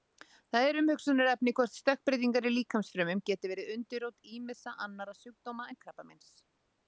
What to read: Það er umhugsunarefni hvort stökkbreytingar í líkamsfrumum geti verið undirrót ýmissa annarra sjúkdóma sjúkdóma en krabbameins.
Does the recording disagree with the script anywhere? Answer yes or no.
yes